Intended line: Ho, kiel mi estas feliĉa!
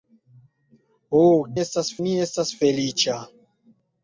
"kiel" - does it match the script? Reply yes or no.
no